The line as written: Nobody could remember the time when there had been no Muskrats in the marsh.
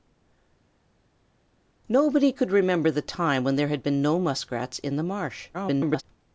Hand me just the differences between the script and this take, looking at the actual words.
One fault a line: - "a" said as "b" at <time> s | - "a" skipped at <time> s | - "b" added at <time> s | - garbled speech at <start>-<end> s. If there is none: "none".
- garbled speech at 5.5-6.0 s